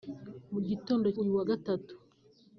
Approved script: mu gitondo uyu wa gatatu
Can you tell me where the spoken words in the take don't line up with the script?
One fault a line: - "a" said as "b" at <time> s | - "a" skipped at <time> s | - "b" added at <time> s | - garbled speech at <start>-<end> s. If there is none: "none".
none